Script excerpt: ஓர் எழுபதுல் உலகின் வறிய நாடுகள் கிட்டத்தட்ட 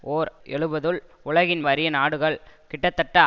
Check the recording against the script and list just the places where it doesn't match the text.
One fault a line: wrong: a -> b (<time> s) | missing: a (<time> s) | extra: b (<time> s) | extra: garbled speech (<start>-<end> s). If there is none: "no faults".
no faults